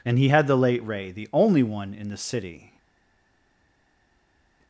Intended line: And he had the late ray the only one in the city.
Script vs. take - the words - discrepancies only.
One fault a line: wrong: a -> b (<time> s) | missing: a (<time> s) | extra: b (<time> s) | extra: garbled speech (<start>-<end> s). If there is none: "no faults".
no faults